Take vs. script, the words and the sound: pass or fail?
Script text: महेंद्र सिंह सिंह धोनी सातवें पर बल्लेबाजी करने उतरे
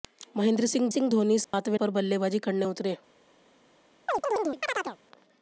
fail